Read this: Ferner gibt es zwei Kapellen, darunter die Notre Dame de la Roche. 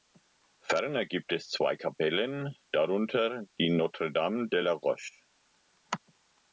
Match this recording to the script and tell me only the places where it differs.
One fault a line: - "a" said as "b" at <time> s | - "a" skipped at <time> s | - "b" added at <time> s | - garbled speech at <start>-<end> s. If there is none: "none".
none